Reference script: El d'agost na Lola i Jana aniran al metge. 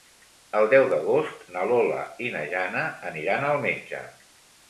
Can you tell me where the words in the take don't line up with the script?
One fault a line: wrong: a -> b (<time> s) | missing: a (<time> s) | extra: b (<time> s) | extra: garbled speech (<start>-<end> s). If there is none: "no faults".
extra: deu (0.7 s)
extra: na (2.4 s)